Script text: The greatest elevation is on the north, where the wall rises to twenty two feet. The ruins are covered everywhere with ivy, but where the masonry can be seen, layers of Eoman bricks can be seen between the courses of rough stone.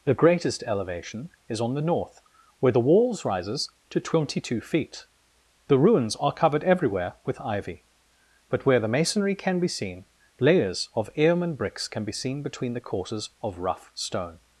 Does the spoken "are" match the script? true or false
true